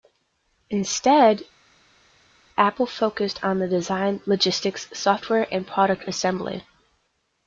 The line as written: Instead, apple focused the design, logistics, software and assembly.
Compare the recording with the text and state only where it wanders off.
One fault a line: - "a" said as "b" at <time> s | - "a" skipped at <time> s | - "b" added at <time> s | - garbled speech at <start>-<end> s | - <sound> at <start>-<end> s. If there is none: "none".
- "on" added at 3.4 s
- "product" added at 5.7 s